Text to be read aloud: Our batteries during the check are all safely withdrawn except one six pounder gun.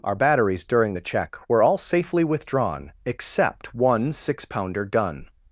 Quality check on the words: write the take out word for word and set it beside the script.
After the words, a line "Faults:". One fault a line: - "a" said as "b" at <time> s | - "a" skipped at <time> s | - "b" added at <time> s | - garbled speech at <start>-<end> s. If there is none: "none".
Our batteries during the check were all safely withdrawn except one six pounder gun.
Faults:
- "are" said as "were" at 1.5 s